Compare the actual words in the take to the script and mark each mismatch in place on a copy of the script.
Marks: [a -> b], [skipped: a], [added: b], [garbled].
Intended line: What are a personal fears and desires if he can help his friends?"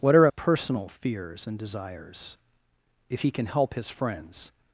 What are a personal fears and desires if he can help his friends?"